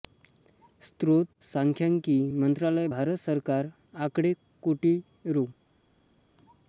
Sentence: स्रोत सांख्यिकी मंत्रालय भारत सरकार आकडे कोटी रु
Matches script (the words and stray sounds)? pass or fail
pass